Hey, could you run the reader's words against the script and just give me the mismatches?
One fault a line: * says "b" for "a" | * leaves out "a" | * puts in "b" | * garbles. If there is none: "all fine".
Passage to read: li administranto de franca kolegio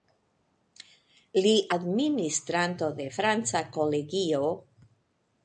all fine